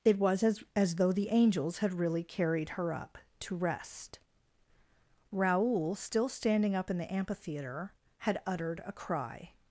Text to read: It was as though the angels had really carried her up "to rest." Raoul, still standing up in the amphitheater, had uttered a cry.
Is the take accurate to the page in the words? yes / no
no